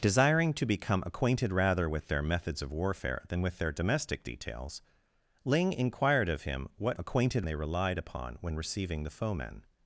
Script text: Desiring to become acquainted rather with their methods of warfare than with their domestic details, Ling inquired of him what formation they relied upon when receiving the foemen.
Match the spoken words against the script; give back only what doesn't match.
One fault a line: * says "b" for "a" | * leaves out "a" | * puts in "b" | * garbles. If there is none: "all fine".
* says "acquainted" for "formation"